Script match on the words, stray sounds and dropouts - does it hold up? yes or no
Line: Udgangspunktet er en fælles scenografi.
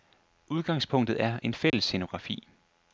no